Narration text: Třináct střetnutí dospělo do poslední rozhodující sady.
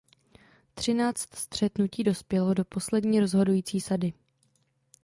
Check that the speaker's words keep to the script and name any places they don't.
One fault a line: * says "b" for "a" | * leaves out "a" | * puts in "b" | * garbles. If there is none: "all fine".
all fine